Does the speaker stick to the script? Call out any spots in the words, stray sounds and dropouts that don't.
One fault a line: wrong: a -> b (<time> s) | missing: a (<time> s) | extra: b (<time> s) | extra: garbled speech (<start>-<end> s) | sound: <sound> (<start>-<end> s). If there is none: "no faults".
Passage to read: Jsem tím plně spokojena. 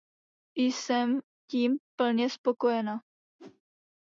sound: whoosh (3.4-3.6 s)